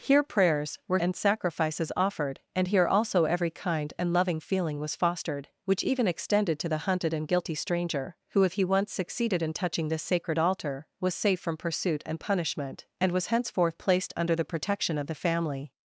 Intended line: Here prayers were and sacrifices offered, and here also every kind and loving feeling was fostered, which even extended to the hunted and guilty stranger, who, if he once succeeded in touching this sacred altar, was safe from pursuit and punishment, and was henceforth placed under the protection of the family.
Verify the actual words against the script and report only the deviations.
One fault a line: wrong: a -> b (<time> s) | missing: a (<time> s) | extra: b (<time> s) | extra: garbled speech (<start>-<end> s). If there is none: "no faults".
no faults